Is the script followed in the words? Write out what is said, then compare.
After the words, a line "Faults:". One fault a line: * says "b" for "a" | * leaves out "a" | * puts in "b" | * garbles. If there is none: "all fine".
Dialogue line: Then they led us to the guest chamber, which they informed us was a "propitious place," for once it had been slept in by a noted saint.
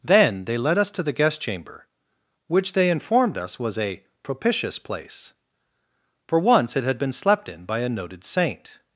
Then they led us to the guest chamber, which they informed us was a "propitious place," for once it had been slept in by a noted saint.
Faults:
all fine